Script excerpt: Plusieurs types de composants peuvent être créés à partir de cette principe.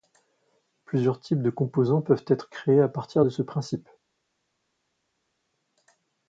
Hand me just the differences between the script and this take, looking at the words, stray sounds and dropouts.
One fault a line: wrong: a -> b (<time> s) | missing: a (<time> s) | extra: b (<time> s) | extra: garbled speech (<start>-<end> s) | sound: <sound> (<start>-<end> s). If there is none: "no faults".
wrong: cette -> ce (3.3 s)